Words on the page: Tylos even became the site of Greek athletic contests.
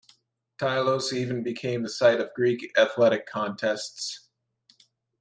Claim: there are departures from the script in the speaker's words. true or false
false